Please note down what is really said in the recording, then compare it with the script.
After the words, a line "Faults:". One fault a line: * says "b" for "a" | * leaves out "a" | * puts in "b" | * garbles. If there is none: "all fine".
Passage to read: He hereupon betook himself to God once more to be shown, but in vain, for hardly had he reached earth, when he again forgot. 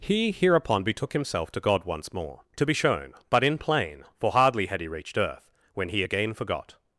He hereupon betook himself to God once more to be shown, but in plain, for hardly had he reached earth, when he again forgot.
Faults:
* says "plain" for "vain"